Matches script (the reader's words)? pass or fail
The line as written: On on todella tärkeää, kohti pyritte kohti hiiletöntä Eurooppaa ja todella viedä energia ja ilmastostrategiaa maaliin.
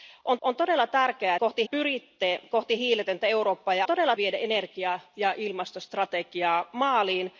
pass